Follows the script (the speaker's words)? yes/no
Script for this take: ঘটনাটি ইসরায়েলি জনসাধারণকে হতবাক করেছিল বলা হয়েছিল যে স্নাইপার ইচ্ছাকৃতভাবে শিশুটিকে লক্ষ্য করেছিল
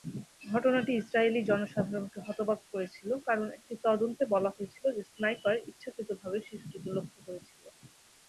no